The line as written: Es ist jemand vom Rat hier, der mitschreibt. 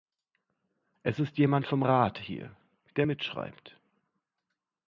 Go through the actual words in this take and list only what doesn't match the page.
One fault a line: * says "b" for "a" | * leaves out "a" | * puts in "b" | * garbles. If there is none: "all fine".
all fine